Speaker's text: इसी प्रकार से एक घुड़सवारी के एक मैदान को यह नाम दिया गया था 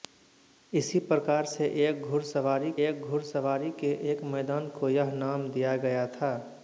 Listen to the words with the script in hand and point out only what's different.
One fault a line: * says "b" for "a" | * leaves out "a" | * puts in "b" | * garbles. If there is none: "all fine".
* puts in "एक घुड़सवारी"